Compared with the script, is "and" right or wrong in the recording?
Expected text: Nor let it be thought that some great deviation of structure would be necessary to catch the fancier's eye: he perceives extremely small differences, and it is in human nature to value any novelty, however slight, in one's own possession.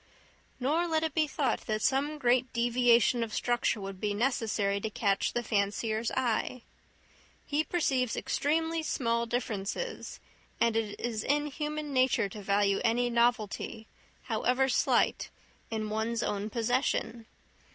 right